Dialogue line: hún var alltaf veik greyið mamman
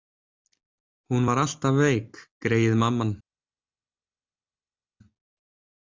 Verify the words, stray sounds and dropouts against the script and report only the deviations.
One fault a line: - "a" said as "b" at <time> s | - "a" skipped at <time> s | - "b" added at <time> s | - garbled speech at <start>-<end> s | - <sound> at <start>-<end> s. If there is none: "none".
none